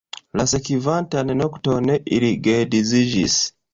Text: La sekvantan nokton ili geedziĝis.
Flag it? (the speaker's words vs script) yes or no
no